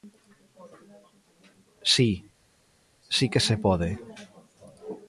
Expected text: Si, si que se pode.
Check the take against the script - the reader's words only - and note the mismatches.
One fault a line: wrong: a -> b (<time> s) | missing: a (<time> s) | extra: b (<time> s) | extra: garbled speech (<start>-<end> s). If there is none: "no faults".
no faults